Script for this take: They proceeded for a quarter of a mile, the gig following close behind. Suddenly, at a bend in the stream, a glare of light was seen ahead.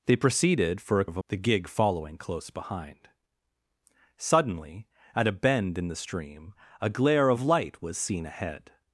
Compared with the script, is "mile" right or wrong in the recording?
wrong